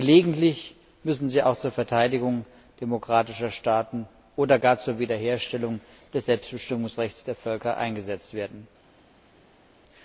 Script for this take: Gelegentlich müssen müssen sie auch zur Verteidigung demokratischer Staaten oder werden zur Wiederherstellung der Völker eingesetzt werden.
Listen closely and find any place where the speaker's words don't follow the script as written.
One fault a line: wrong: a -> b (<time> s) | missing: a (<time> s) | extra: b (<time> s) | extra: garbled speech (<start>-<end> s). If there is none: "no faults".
missing: müssen (1.3 s)
wrong: werden -> gar (4.6 s)
extra: des Selbstbestimmungsrechts (6.1 s)